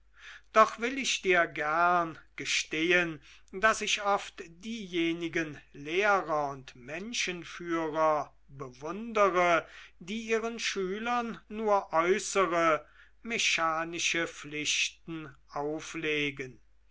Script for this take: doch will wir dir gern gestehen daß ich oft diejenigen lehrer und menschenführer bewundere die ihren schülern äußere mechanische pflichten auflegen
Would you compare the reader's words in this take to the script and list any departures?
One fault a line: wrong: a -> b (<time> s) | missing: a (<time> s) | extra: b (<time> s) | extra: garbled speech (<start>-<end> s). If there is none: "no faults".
wrong: wir -> ich (1.0 s)
extra: nur (11.5 s)